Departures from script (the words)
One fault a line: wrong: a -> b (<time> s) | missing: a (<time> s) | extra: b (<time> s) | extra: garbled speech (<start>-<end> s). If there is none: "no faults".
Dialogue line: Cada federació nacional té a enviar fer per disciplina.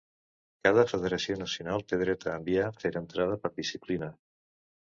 extra: dret (2.0 s)
extra: entrada (3.0 s)